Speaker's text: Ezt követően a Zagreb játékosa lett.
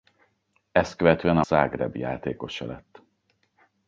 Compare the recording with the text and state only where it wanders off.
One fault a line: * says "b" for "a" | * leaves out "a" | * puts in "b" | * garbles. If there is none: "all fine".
all fine